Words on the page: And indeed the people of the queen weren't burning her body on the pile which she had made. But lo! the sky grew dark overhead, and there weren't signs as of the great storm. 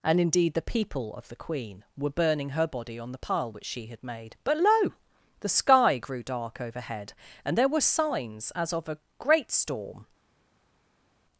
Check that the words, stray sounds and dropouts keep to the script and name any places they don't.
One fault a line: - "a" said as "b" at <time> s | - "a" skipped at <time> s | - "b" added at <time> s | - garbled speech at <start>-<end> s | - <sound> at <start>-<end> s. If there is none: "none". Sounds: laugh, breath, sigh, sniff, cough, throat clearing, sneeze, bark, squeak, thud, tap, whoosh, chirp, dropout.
- "weren't" said as "were" at 2.0 s
- "weren't" said as "were" at 7.7 s
- "the" said as "a" at 8.9 s